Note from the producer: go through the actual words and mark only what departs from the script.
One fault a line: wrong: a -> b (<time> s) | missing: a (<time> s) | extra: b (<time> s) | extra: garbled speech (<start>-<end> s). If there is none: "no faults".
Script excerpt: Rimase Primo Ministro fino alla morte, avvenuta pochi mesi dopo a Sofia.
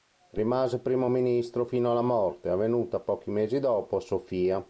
no faults